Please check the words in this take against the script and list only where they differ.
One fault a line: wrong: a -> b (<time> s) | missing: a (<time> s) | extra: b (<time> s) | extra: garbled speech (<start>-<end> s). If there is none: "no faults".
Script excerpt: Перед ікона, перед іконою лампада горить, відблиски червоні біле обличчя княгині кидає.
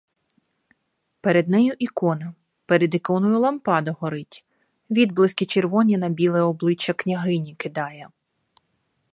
extra: нею (1.5 s)
extra: на (6.0 s)